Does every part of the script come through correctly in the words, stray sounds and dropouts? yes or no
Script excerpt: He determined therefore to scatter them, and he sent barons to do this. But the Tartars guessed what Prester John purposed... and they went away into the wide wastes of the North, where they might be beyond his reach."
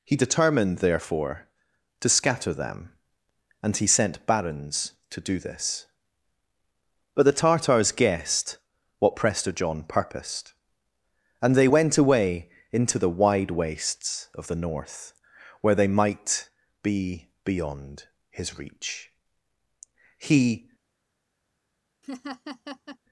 no